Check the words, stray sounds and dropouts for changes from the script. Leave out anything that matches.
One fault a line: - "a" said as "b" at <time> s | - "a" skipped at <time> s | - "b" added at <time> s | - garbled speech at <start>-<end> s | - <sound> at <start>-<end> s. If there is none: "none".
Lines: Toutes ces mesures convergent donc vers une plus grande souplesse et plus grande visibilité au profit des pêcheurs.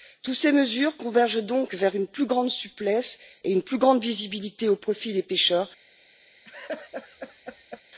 - "une" added at 3.5 s
- laugh at 6.4-7.8 s